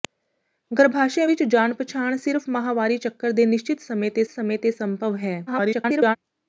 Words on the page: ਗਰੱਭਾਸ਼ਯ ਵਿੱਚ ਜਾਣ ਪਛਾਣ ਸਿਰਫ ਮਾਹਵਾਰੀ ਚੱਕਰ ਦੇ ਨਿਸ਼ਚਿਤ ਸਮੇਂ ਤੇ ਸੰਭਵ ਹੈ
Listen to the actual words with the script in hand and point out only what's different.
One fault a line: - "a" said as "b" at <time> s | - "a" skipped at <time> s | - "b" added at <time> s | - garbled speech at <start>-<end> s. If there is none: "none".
- "ਸਮੇਂ ਤੇ" added at 4.3 s
- garbled speech at 5.5-6.2 s